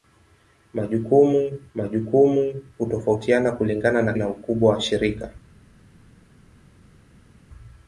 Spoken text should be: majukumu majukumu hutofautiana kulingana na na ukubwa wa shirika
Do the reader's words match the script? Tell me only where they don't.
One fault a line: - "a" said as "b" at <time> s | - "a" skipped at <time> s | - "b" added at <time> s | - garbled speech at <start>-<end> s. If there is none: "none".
none